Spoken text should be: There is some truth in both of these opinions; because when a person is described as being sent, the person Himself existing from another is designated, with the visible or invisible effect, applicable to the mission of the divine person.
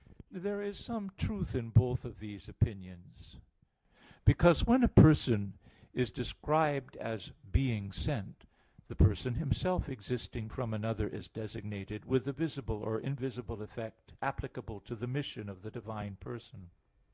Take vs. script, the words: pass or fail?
pass